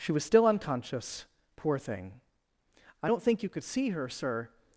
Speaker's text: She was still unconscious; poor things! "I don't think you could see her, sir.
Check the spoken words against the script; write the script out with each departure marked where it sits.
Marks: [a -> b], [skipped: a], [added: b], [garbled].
She was still unconscious; poor [things! -> thing] "I don't think you could see her, sir.